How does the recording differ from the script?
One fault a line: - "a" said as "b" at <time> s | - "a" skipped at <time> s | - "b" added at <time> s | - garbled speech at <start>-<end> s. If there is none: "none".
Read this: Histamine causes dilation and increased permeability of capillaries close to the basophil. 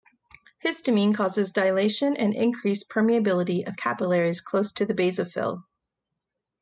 none